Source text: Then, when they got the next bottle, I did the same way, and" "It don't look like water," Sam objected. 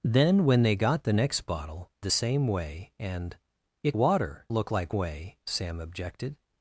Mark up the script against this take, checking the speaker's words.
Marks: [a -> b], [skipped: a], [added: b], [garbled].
Then, when they got the next bottle, [skipped: I did] the same way, and" "It [don't -> water] look like [water," -> way] Sam objected.